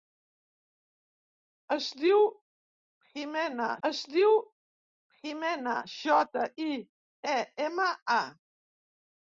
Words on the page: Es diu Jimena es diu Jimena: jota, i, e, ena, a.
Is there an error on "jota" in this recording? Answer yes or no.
no